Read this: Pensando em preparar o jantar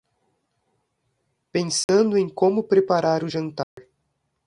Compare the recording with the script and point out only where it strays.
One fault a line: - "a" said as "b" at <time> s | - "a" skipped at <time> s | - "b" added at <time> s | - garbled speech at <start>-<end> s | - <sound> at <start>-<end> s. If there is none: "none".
- dropout at 1.8-1.9 s
- "como" added at 2.3 s
- dropout at 3.6-3.8 s